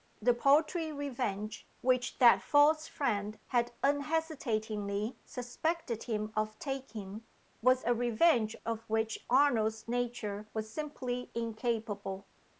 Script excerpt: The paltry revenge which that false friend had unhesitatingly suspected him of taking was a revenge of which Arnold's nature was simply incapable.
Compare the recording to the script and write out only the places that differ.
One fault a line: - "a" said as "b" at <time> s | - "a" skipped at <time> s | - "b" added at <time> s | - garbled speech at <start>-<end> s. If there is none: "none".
none